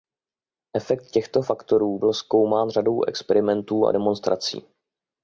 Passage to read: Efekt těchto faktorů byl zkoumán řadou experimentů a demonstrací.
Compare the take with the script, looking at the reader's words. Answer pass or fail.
pass